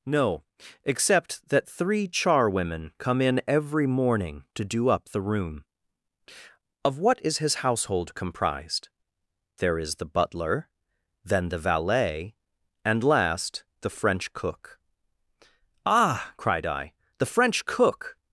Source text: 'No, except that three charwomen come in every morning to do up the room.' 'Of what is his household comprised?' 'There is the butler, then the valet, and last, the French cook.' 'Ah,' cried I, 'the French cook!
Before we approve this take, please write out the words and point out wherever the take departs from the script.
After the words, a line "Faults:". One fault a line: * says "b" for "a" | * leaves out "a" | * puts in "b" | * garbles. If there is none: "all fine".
'No, except that three charwomen come in every morning to do up the room.' 'Of what is his household comprised?' 'There is the butler, then the valet, and last, the French cook.' 'Ah,' cried I, 'the French cook!
Faults:
all fine